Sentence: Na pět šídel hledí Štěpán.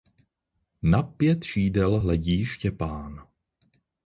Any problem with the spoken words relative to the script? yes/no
no